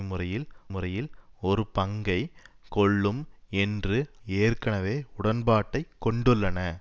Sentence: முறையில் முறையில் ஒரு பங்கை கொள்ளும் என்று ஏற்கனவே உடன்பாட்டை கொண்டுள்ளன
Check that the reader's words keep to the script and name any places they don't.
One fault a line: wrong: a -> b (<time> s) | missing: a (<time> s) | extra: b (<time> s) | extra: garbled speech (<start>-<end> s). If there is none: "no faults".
no faults